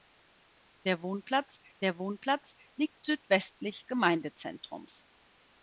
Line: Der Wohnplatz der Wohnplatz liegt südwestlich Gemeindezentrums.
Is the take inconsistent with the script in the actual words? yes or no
no